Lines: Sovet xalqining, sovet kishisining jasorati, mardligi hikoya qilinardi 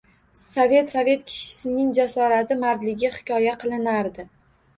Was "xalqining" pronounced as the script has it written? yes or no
no